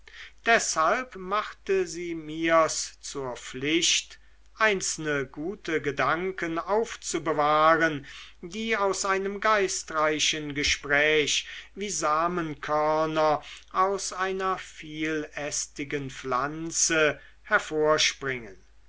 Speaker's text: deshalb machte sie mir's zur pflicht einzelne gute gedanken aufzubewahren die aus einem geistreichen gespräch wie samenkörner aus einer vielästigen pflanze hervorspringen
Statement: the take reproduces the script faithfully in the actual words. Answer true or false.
true